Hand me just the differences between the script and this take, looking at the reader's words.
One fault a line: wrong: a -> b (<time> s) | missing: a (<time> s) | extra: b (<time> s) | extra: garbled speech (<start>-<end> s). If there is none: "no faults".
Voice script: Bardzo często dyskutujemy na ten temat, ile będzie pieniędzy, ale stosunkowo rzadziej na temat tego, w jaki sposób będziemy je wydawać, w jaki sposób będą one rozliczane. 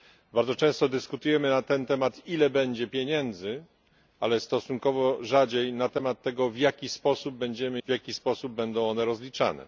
missing: je wydawać (7.8 s)